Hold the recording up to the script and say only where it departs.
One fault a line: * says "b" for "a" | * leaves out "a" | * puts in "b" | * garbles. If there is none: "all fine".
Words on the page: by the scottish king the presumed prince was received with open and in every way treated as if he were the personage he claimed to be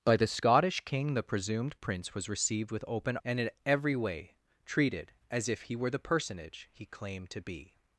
all fine